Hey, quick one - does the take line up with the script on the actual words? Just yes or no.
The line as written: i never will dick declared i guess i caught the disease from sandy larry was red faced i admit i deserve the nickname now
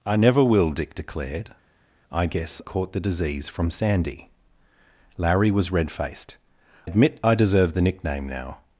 no